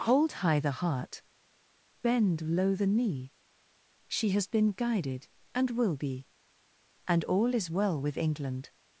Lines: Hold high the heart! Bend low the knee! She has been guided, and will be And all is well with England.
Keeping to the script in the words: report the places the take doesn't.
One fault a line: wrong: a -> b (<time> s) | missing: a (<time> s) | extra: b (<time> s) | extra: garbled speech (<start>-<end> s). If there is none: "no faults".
no faults